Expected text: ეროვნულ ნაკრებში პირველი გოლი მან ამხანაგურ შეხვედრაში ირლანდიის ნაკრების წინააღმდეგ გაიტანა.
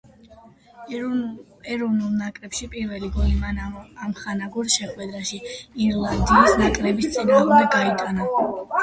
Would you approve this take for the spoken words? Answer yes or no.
yes